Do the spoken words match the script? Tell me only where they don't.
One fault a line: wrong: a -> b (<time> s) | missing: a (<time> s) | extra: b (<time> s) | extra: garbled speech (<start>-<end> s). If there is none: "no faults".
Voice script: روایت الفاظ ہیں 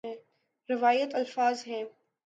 no faults